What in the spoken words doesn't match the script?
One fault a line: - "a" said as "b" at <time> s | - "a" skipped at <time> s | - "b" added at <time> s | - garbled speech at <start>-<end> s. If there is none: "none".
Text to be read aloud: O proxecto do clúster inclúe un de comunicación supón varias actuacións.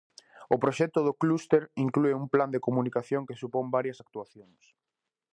- "plan" added at 2.3 s
- "que" added at 3.3 s